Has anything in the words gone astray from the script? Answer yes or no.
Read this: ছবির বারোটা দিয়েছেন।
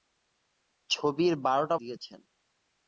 no